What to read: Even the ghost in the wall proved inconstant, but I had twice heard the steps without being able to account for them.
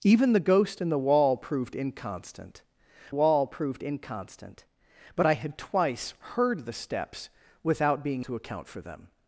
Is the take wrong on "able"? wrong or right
wrong